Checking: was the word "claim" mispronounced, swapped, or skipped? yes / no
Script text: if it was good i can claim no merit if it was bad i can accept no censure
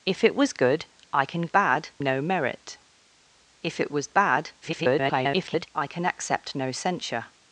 yes